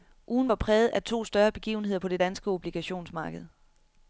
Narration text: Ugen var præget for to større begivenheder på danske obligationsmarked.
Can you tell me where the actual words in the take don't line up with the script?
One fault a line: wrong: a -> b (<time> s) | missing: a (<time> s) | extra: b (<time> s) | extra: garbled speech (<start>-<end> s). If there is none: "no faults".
wrong: for -> af (0.9 s)
extra: det (2.1 s)